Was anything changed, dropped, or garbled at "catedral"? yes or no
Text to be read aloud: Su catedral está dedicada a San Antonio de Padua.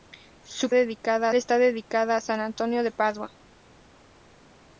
yes